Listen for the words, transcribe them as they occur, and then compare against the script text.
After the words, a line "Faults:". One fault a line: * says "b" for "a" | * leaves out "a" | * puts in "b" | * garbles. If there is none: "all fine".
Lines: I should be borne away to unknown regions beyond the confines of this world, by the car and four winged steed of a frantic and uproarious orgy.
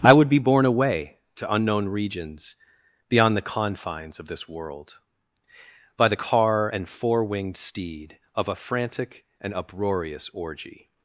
I would be borne away to unknown regions beyond the confines of this world, by the car and four winged steed of a frantic and uproarious orgy.
Faults:
* says "would" for "should"